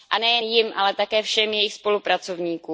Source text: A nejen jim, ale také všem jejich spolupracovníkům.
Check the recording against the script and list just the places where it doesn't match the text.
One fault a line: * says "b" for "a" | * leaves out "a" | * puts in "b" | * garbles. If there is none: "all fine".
all fine